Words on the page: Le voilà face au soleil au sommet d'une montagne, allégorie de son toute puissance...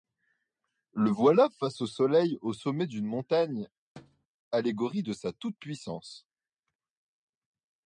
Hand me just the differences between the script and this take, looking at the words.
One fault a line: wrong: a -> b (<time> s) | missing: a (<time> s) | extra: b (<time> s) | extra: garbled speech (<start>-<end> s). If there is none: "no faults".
wrong: son -> sa (5.1 s)